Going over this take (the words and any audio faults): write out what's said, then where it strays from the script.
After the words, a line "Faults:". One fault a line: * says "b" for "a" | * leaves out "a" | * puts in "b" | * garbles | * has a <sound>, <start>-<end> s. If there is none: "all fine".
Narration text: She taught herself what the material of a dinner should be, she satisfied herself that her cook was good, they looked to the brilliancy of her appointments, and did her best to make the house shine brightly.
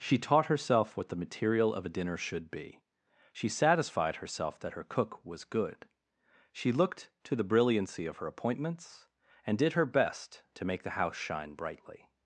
She taught herself what the material of a dinner should be, she satisfied herself that her cook was good, she looked to the brilliancy of her appointments, and did her best to make the house shine brightly.
Faults:
* says "she" for "they"